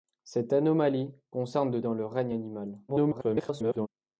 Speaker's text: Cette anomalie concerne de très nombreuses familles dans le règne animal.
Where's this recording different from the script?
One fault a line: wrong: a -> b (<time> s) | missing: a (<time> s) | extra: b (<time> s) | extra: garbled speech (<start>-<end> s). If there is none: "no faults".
missing: très nombreuses familles (1.8 s)
extra: garbled speech (2.9-3.9 s)